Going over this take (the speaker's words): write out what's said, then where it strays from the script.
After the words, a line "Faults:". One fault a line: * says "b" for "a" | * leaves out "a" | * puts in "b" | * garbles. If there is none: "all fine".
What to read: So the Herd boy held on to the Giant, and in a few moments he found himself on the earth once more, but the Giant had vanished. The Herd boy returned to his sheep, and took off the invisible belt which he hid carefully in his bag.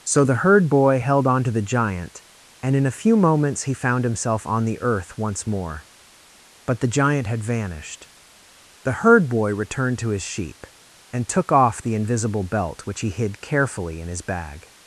So the Herd boy held on to the Giant, and in a few moments he found himself on the earth once more, but the Giant had vanished. The Herd boy returned to his sheep, and took off the invisible belt which he hid carefully in his bag.
Faults:
all fine